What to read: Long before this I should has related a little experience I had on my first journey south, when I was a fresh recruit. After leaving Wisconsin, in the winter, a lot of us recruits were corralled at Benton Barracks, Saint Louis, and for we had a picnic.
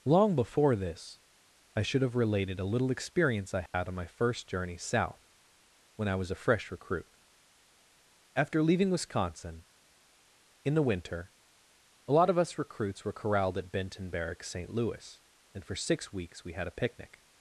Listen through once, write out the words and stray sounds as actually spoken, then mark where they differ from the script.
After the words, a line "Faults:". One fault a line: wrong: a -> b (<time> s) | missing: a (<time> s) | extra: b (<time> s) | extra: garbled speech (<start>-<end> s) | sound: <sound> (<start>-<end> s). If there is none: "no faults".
Long before this I should have related a little experience I had on my first journey south, when I was a fresh recruit. After leaving Wisconsin, in the winter, a lot of us recruits were corralled at Benton Barracks, Saint Louis, and for six weeks we had a picnic.
Faults:
wrong: has -> have (2.0 s)
sound: dropout (3.7-3.7 s)
extra: six weeks (15.7 s)